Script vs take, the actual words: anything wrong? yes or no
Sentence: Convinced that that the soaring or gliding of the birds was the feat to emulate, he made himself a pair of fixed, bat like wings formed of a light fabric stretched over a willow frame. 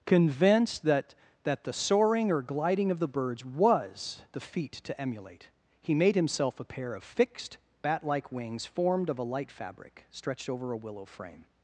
no